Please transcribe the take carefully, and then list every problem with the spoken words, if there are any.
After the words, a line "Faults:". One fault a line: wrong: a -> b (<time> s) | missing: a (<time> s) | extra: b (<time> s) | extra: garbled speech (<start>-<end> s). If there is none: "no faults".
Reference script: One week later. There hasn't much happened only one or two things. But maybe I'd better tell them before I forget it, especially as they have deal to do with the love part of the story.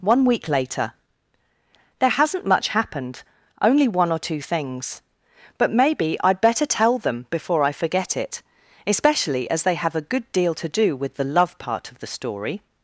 One week later. There hasn't much happened only one or two things. But maybe I'd better tell them before I forget it, especially as they have a good deal to do with the love part of the story.
Faults:
extra: a good (10.0 s)